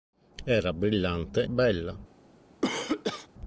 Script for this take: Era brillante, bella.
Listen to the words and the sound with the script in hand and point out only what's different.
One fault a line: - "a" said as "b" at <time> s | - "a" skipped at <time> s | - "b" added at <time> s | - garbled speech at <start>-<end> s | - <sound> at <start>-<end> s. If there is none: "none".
- cough at 2.6-3.3 s